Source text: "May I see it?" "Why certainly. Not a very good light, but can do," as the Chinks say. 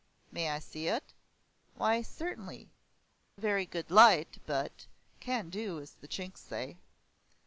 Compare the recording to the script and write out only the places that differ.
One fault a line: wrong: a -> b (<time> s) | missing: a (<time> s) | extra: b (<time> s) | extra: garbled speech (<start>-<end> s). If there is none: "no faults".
missing: Not (2.7 s)